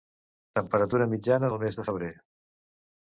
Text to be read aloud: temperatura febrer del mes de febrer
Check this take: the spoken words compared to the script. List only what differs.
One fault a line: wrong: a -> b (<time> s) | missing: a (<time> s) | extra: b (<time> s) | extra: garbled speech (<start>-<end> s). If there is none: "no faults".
wrong: febrer -> mitjana (1.1 s)